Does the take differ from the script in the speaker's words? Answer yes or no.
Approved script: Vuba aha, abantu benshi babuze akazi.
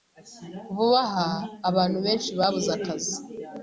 no